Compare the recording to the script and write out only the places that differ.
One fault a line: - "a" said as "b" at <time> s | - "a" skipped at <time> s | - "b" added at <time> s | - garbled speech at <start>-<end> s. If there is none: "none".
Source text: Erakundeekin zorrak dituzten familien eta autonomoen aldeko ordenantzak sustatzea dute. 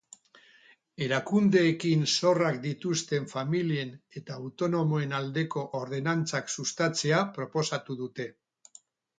- "proposatu" added at 7.4 s